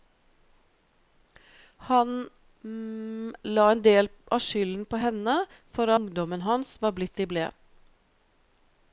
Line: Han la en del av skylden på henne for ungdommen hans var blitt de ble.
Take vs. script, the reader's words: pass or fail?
pass